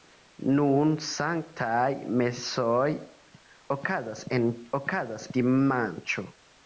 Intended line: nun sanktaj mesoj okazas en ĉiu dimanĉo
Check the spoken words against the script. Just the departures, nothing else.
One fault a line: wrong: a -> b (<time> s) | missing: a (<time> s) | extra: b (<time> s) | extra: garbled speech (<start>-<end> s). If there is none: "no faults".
wrong: ĉiu -> okazas (4.8 s)